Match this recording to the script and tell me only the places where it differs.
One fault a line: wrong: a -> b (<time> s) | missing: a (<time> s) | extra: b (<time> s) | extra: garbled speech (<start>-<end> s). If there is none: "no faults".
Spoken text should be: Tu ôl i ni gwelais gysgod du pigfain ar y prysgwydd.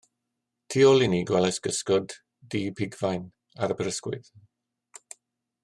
no faults